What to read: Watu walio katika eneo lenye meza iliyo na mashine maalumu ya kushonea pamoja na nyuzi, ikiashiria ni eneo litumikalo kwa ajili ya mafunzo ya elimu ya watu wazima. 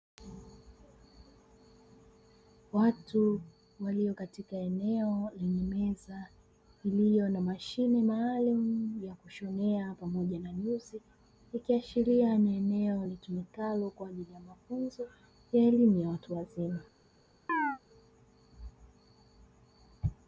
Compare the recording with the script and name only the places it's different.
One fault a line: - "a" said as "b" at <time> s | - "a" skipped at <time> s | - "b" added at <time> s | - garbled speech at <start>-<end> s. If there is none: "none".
none